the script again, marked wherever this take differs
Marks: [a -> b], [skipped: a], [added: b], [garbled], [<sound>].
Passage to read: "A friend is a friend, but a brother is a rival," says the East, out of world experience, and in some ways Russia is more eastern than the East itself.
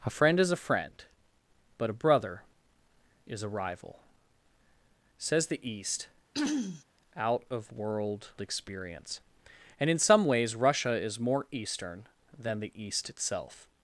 "A friend is a friend, but a brother is a rival," says the East, [throat clearing] out of world experience, and in some ways Russia is more eastern than the East itself.